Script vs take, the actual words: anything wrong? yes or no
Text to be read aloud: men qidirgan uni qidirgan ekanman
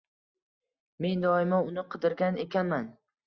yes